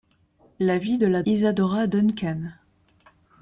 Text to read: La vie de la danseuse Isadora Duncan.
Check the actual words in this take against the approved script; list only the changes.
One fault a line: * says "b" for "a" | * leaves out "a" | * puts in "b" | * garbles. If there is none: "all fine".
* leaves out "danseuse"